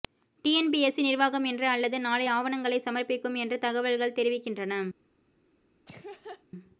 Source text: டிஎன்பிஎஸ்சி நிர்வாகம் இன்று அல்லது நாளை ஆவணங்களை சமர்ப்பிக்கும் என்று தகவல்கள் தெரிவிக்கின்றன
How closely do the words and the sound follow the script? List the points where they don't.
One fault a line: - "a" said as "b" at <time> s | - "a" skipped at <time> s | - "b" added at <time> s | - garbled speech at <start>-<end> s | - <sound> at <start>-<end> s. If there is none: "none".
- laugh at 5.9-6.4 s